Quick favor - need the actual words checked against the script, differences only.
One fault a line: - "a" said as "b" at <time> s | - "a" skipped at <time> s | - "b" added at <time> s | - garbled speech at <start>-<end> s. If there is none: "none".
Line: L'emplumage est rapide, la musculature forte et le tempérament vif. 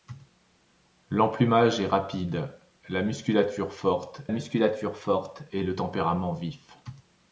- "musculature forte" added at 4.3 s